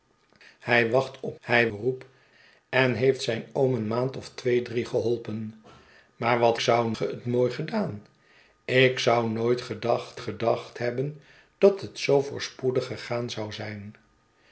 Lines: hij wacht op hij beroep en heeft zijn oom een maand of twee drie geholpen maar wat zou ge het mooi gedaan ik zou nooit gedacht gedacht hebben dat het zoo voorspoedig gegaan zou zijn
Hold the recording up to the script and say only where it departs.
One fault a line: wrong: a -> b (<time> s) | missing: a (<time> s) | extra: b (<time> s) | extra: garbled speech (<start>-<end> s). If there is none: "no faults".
no faults